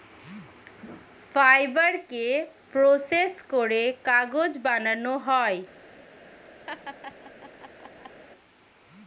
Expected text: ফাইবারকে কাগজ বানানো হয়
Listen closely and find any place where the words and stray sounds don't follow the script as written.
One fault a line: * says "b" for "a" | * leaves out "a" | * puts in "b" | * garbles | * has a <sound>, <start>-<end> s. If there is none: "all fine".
* puts in "প্রসেস করে"
* has a laugh, 6.7-8.2 s